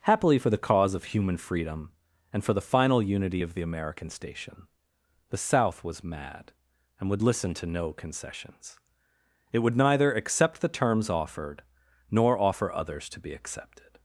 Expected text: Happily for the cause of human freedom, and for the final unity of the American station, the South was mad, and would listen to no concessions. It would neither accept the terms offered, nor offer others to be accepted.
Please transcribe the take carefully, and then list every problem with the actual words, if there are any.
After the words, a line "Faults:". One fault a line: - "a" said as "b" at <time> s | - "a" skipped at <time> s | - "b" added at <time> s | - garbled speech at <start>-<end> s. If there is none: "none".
Happily for the cause of human freedom, and for the final unity of the American station, the South was mad, and would listen to no concessions. It would neither accept the terms offered, nor offer others to be accepted.
Faults:
none